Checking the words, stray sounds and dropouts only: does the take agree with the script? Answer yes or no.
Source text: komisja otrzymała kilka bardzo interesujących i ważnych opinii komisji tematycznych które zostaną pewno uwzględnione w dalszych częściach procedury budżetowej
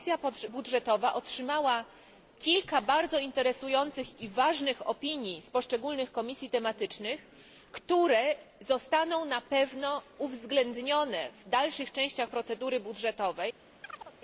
no